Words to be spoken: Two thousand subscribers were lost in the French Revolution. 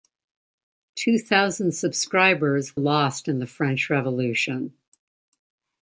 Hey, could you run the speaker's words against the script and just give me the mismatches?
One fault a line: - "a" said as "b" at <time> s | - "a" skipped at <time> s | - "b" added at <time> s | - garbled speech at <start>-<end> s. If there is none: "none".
- "were" skipped at 2.7 s